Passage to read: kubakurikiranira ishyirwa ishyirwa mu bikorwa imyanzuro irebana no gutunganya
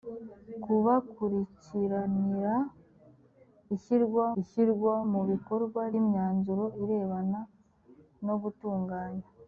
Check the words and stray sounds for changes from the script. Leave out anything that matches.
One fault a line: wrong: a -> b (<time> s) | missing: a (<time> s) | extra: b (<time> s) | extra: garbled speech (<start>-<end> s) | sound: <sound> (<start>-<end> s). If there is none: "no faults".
no faults